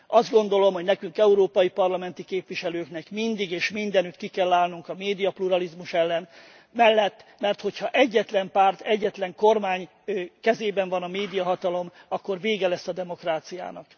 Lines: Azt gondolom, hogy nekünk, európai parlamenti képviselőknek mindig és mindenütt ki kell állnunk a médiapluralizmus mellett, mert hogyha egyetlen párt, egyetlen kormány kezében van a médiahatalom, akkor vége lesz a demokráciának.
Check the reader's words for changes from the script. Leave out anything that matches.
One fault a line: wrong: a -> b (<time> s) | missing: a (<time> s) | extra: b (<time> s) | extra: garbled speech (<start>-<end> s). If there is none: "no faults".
no faults